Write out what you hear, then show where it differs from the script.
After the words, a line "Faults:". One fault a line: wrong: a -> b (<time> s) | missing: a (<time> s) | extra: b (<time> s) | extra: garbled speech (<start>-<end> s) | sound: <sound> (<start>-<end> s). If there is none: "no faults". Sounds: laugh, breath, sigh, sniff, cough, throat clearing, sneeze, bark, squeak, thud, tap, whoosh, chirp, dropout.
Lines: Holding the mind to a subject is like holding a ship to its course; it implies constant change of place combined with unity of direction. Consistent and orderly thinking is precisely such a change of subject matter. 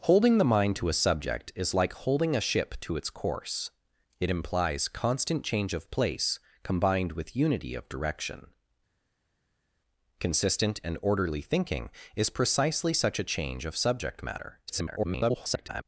Holding the mind to a subject is like holding a ship to its course; it implies constant change of place combined with unity of direction. Consistent and orderly thinking is precisely such a change of subject matter. [garbled]
Faults:
extra: garbled speech (14.7-15.8 s)